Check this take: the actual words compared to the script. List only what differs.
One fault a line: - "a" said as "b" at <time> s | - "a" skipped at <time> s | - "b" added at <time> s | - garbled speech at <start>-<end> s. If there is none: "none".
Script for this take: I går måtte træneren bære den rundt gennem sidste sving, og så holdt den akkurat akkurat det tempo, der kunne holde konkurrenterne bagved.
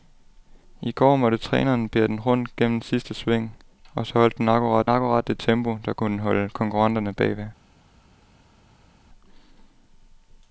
none